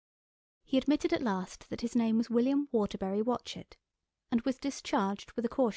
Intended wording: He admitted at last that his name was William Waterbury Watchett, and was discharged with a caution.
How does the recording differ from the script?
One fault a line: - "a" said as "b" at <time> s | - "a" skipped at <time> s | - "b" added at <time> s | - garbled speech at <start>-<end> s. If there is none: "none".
none